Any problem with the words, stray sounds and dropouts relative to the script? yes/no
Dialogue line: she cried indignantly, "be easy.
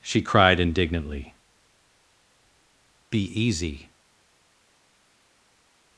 no